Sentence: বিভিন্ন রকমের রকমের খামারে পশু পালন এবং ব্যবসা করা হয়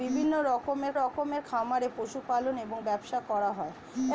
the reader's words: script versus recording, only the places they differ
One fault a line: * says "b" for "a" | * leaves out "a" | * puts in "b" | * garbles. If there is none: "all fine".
all fine